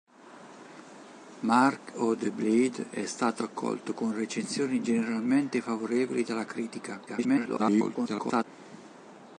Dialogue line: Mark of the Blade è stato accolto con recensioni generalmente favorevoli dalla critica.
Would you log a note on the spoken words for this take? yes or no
yes